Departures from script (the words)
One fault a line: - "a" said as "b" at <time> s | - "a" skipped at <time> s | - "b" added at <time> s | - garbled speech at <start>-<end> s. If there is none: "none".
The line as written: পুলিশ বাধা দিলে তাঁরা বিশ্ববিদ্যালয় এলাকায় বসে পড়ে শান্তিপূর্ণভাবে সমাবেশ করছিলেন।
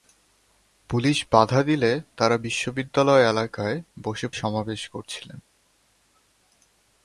- "পড়ে শান্তিপূর্ণভাবে" skipped at 4.3 s